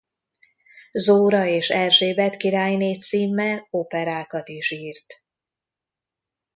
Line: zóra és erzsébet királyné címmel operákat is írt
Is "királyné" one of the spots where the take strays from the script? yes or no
no